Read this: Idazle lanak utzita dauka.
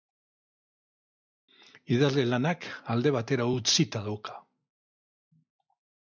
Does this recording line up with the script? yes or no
no